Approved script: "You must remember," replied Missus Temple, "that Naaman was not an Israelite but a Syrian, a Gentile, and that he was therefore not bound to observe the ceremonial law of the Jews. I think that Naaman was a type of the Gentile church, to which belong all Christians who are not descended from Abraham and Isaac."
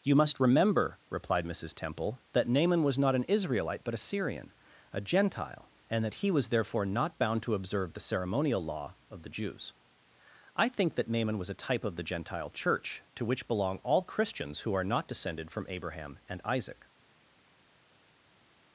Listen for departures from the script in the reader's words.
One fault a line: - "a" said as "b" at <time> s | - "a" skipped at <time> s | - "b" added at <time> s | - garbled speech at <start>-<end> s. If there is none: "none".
none